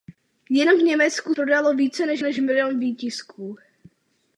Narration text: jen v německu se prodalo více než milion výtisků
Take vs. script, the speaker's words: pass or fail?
fail